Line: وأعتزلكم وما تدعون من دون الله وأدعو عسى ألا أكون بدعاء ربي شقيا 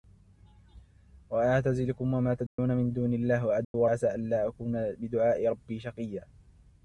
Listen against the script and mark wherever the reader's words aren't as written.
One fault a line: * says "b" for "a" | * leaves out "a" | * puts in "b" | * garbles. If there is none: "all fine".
all fine